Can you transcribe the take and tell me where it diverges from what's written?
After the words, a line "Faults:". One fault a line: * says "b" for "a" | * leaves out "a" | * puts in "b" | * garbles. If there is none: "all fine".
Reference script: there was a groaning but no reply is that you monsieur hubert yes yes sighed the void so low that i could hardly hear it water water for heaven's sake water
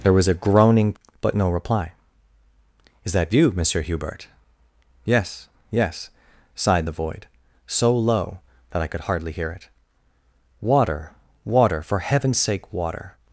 there was a groaning but no reply is that you monsieur hubert yes yes sighed the void so low that i could hardly hear it water water for heaven's sake water
Faults:
all fine